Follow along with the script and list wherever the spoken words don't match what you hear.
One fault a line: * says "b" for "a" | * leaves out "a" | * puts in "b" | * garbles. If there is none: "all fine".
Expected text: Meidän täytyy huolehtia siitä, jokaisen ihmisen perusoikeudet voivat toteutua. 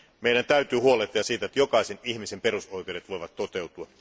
* puts in "että"